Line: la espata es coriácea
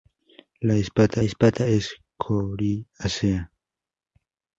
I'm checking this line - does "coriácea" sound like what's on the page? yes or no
yes